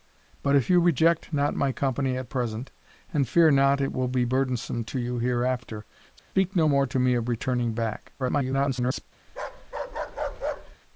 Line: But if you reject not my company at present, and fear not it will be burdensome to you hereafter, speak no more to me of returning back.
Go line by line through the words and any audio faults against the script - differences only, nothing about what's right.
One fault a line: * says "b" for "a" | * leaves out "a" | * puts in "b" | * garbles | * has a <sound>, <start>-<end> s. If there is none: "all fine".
* has a dropout, 6.2-6.3 s
* garbles
* has a bark, 9.3-10.8 s